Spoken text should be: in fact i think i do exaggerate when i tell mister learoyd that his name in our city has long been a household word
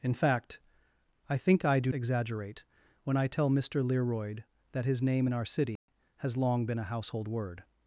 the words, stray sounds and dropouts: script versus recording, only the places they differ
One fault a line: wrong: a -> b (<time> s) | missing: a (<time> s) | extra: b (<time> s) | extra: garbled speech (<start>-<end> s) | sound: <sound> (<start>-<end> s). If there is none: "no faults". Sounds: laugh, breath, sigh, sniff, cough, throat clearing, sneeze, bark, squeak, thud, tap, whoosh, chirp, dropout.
sound: dropout (5.8-5.9 s)